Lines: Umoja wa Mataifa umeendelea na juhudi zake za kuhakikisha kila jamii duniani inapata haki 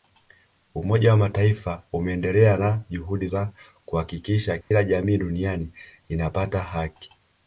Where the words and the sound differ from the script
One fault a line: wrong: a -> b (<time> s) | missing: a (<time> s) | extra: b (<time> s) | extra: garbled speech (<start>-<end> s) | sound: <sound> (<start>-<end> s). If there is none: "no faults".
missing: zake (3.3 s)
sound: dropout (4.6-4.7 s)